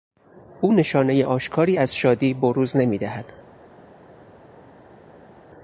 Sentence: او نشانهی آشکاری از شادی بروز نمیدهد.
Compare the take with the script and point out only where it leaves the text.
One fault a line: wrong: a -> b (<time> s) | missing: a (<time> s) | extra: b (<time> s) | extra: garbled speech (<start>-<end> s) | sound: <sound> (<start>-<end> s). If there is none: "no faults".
no faults